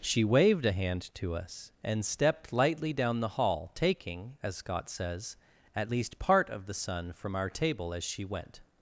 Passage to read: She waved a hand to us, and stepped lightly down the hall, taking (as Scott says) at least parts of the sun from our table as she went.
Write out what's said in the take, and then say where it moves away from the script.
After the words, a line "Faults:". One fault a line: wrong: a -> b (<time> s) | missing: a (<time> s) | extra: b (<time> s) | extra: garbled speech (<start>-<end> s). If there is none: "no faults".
She waved a hand to us, and stepped lightly down the hall, taking (as Scott says) at least part of the sun from our table as she went.
Faults:
wrong: parts -> part (6.2 s)